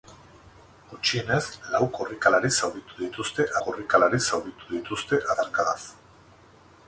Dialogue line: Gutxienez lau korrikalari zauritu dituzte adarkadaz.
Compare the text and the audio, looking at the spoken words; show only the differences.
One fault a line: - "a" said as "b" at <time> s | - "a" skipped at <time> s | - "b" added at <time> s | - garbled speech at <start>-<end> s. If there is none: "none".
- "korrikalari zauritu dituzte" added at 3.7 s